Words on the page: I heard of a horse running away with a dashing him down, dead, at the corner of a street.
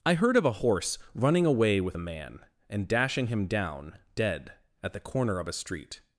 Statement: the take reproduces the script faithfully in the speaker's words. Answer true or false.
false